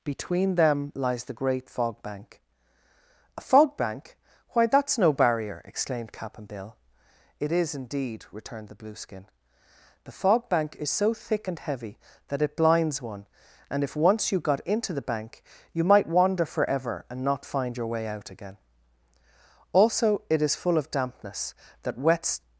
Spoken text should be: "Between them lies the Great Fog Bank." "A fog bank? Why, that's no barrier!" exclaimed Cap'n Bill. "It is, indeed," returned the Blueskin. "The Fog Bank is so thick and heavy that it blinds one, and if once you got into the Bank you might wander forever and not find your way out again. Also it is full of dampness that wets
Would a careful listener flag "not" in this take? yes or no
no